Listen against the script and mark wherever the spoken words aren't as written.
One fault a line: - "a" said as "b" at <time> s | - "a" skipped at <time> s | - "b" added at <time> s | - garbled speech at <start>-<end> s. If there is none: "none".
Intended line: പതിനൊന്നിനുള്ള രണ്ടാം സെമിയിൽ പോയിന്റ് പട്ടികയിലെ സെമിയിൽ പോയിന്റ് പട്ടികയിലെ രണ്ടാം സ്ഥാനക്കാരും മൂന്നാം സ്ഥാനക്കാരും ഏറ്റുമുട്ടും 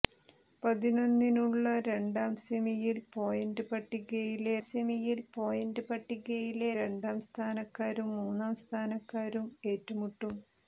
none